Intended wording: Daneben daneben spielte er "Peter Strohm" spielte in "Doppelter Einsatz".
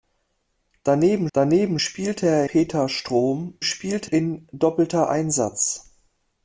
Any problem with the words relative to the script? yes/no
no